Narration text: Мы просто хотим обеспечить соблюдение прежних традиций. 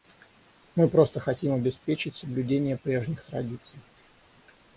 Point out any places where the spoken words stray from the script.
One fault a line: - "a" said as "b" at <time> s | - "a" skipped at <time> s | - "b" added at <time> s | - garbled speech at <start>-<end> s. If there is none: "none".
none